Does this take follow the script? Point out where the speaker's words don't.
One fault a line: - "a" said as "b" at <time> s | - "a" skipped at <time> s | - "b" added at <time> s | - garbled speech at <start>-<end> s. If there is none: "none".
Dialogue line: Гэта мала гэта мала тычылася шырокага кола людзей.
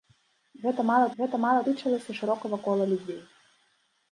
none